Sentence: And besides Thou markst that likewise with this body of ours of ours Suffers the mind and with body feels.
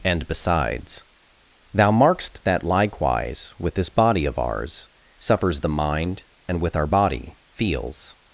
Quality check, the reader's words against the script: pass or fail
fail